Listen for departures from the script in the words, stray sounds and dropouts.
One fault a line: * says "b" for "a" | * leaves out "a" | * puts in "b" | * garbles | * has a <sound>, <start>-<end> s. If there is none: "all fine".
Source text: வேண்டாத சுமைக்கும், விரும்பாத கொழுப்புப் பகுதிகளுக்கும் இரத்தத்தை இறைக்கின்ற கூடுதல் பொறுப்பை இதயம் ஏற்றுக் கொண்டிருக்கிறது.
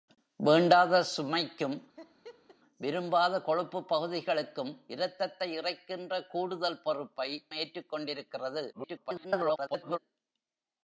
* has a laugh, 2.0-2.6 s
* leaves out "இதயம்"
* garbles